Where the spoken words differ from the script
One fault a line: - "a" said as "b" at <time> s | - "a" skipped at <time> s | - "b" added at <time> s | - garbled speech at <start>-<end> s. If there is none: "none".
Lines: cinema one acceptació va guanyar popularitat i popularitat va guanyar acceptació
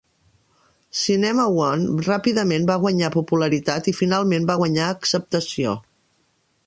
- "acceptació" said as "ràpidament" at 2.1 s
- "popularitat" said as "finalment" at 4.0 s